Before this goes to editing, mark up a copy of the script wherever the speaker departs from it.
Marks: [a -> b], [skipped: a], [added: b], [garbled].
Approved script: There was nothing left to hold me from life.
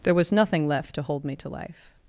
There was nothing left to hold me [from -> to] life.